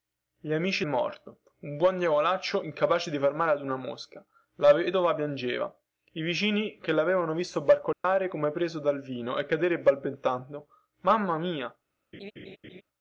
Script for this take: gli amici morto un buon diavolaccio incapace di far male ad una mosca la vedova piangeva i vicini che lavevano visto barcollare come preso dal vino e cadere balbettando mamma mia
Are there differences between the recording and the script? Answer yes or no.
no